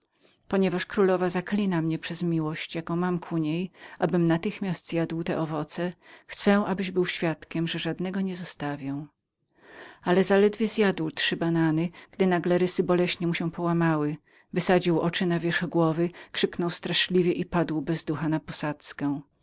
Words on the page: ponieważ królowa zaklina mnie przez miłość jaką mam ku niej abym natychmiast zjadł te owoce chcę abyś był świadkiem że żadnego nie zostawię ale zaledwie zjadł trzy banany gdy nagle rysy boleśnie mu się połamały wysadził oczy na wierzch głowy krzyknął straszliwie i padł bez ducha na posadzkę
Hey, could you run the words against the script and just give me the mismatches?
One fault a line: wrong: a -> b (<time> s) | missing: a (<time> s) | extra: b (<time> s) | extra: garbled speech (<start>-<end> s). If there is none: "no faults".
no faults